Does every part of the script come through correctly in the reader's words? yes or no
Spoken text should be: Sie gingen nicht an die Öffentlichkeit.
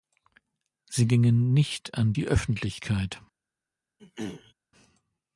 yes